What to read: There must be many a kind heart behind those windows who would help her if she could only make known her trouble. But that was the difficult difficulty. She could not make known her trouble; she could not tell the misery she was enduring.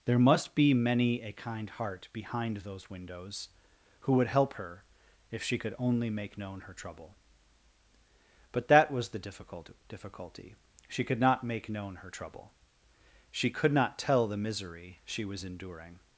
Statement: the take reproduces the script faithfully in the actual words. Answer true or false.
true